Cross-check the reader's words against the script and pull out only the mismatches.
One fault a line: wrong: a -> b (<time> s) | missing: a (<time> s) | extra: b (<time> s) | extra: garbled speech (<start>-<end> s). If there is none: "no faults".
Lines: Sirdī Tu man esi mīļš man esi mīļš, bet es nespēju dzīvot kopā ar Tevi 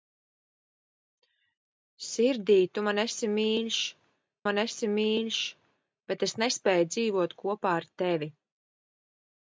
no faults